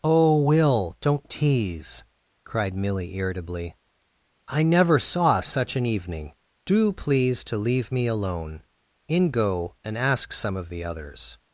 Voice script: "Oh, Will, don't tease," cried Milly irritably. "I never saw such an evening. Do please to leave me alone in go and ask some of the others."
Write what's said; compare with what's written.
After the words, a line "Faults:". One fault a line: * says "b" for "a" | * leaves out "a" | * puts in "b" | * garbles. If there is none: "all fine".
"Oh, Will, don't tease," cried Milly irritably. "I never saw such an evening. Do please to leave me alone in go and ask some of the others."
Faults:
all fine